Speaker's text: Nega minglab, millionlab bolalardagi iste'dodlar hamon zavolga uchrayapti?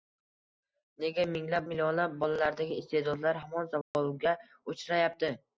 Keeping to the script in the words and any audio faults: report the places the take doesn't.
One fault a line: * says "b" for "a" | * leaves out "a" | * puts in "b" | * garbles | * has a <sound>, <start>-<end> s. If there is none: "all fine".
* has a dropout, 3.8-3.9 s